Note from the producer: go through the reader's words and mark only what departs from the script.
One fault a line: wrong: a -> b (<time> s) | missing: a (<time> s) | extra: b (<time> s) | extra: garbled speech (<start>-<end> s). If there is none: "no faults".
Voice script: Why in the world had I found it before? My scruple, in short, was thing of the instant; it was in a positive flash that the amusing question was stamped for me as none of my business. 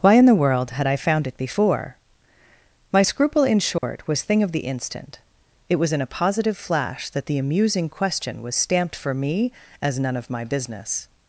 no faults